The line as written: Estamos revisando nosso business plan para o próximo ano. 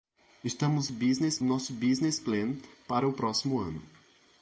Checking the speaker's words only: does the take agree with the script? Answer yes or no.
no